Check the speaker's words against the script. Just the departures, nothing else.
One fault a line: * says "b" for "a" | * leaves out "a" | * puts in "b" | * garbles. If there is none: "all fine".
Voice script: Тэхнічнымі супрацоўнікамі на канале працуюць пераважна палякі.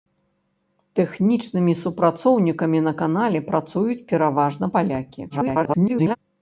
* garbles